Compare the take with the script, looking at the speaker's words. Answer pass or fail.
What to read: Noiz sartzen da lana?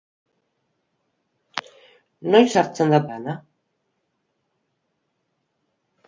pass